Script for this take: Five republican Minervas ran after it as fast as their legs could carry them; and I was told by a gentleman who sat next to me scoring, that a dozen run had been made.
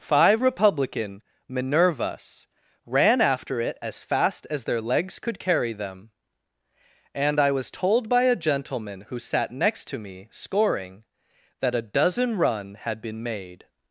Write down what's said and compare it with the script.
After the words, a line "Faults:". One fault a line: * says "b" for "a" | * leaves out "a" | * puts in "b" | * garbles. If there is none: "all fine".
Five republican Minervas ran after it as fast as their legs could carry them; and I was told by a gentleman who sat next to me scoring, that a dozen run had been made.
Faults:
all fine